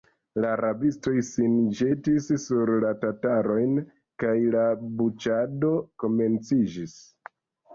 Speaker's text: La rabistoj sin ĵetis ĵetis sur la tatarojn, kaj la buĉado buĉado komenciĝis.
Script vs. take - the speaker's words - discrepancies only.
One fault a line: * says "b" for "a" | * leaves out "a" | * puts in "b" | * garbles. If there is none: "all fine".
* leaves out "ĵetis"
* leaves out "buĉado"